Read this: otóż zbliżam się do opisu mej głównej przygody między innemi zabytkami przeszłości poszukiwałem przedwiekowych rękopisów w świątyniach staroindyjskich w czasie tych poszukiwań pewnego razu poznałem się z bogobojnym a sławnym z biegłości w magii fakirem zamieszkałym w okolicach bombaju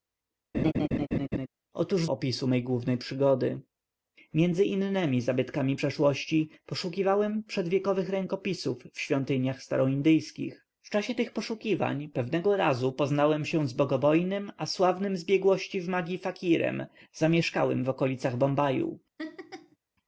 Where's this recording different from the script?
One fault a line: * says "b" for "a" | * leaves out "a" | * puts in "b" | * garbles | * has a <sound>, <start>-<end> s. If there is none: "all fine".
* has a laugh, 0.5-1.5 s
* leaves out "zbliżam się do"
* has a laugh, 19.2-19.8 s